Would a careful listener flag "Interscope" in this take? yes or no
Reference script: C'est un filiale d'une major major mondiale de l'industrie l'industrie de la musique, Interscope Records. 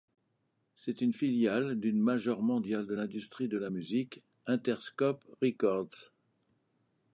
no